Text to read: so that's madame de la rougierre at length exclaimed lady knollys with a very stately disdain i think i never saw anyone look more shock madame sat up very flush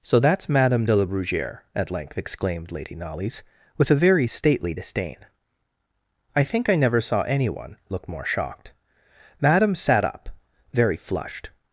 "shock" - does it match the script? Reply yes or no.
no